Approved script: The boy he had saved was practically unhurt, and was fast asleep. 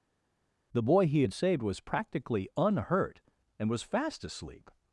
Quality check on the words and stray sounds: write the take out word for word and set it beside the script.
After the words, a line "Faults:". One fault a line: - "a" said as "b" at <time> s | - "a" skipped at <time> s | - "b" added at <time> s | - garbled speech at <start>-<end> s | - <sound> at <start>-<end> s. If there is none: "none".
The boy he had saved was practically unhurt, and was fast asleep.
Faults:
none